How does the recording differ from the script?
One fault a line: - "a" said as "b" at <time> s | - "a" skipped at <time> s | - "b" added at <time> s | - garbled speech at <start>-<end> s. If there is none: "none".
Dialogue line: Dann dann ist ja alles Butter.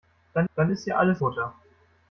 none